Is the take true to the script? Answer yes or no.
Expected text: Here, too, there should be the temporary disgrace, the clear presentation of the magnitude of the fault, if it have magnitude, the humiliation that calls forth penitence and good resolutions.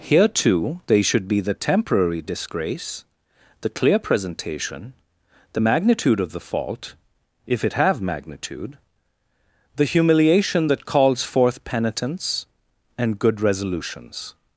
no